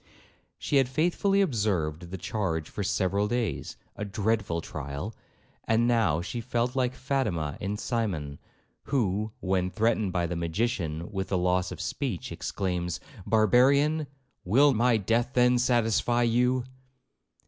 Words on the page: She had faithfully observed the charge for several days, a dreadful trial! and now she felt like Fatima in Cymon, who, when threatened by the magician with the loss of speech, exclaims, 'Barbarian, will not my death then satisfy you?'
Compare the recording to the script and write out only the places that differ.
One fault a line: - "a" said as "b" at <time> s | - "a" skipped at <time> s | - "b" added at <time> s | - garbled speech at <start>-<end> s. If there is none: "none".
- "not" skipped at 14.7 s